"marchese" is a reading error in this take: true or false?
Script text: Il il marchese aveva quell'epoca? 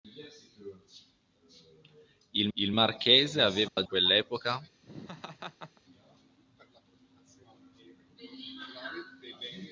false